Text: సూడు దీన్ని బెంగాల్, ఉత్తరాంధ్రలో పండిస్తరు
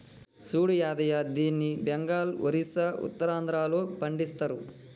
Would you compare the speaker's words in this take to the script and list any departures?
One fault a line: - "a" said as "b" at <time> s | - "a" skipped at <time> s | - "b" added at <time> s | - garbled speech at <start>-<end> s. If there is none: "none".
- "యాదయ్య" added at 0.8 s
- "ఒరిస్సా" added at 2.5 s